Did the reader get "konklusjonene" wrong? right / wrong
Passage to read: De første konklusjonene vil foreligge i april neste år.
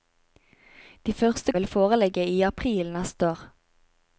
wrong